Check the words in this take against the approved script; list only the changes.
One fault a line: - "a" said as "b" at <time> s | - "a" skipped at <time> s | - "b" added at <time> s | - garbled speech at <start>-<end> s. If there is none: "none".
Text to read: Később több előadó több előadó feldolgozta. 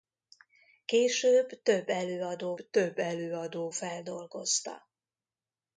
none